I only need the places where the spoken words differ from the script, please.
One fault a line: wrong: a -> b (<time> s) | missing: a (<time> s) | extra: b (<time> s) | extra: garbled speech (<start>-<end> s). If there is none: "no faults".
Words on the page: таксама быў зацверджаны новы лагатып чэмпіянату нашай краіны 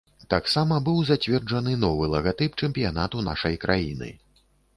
no faults